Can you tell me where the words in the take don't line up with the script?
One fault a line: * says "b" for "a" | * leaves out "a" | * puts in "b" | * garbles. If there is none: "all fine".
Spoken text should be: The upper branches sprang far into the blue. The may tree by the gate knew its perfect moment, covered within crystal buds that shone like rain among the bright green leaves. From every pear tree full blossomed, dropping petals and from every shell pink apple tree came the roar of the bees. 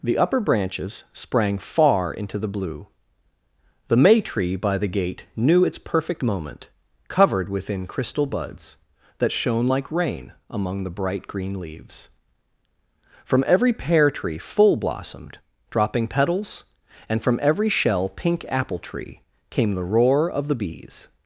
all fine